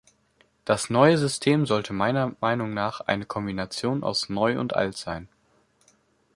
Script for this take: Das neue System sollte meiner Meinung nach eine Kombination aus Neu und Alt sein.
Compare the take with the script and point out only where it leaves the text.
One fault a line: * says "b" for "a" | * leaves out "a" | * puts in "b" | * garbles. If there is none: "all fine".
all fine